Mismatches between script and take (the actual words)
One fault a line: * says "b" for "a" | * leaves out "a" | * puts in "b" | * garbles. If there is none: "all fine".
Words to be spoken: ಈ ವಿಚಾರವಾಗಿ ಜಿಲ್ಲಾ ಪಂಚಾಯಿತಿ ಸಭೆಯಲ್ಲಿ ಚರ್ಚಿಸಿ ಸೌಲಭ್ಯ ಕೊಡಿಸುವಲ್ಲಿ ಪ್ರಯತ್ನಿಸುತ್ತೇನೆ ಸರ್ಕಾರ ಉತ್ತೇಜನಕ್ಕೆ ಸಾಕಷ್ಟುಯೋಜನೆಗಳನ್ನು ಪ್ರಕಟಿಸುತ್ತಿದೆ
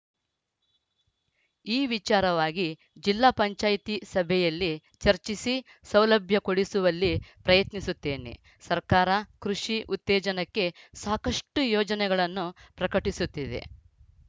* puts in "ಕೃಷಿ"